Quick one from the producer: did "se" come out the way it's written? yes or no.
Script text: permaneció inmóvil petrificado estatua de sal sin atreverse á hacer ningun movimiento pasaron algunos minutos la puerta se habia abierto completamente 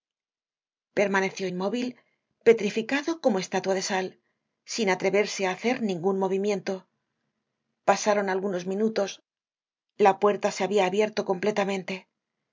yes